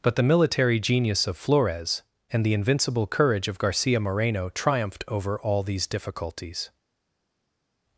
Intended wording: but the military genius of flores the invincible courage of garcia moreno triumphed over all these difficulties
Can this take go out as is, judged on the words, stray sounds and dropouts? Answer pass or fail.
fail